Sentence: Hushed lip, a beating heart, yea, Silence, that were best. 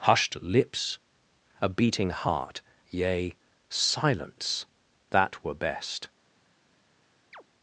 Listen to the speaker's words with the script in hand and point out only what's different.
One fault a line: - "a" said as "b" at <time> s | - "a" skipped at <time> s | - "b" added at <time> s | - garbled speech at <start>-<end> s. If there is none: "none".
- "lip" said as "lips" at 0.4 s